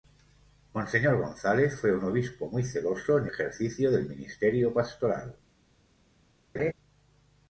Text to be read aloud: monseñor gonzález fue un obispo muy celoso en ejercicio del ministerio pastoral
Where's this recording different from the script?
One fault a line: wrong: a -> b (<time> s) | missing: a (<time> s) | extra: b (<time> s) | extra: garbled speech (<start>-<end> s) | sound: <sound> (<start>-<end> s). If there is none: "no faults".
sound: laugh (6.5-6.7 s)